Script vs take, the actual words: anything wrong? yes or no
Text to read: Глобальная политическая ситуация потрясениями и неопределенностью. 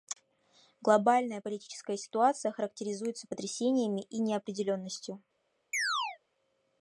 yes